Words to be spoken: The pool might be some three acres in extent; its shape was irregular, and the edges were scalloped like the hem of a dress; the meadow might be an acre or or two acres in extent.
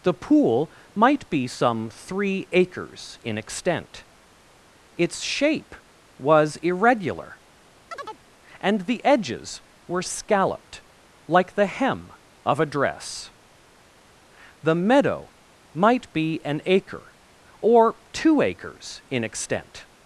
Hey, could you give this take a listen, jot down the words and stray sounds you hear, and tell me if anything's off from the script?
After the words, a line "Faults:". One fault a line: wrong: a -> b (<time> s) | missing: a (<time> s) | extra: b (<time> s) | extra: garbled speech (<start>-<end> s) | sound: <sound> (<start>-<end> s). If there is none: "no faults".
The pool might be some three acres in extent; its shape was irregular, and the edges were scalloped like the hem of a dress; the meadow might be an acre or two acres in extent.
Faults:
sound: chirp (7.9-8.2 s)
missing: or (18.0 s)